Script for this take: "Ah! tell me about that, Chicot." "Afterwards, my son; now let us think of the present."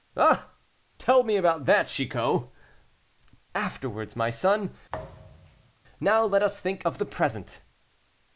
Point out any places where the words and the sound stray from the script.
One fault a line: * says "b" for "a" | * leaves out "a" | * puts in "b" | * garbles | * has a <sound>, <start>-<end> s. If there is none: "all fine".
* has a thud, 4.9-5.7 s